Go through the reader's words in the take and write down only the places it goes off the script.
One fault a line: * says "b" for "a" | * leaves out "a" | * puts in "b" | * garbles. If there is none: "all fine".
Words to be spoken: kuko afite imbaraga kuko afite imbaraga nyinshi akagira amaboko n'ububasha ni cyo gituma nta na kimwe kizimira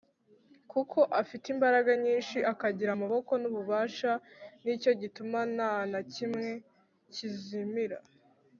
* leaves out "kuko afite imbaraga"